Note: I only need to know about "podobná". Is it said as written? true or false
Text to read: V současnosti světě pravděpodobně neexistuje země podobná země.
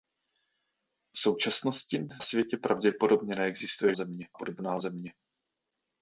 true